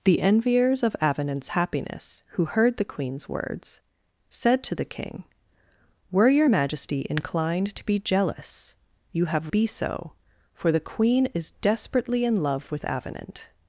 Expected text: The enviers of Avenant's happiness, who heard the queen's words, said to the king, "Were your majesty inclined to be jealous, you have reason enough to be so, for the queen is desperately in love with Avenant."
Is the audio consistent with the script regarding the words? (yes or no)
no